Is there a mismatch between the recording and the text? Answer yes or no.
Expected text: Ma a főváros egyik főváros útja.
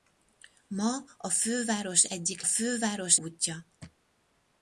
no